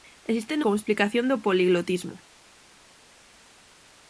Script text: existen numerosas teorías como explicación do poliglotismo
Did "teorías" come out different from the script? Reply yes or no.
yes